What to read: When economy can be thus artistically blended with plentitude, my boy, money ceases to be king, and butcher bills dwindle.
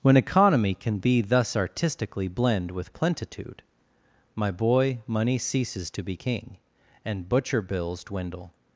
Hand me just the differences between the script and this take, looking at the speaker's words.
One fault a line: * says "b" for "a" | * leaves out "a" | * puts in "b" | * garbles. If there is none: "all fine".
* says "blend" for "blended"